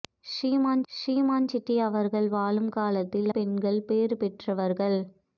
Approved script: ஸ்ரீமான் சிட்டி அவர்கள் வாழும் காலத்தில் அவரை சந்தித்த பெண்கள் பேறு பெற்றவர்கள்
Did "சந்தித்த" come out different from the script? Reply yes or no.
yes